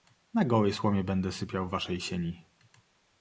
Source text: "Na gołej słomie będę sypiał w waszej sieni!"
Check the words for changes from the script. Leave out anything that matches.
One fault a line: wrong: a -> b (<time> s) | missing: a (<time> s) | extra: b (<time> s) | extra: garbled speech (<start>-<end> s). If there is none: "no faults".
no faults